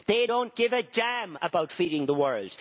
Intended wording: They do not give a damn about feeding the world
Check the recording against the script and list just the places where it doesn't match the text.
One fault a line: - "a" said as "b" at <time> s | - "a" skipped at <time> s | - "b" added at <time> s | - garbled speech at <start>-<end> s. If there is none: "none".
none